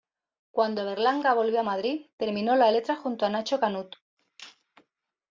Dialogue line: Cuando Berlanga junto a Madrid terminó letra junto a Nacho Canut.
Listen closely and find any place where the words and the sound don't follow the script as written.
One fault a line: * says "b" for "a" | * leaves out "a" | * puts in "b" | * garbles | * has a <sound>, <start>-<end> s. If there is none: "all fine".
* says "volvió" for "junto"
* puts in "la"